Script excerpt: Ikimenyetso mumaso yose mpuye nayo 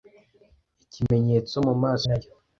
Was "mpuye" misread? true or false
true